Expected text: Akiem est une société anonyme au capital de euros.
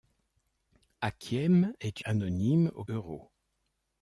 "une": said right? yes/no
no